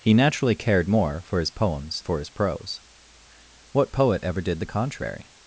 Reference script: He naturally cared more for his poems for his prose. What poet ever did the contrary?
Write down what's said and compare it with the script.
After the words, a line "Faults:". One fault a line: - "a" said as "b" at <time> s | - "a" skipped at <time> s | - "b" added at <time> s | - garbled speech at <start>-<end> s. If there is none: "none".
He naturally cared more for his poems for his prose. What poet ever did the contrary?
Faults:
none